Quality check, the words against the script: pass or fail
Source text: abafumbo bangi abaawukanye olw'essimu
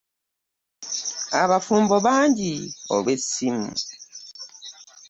fail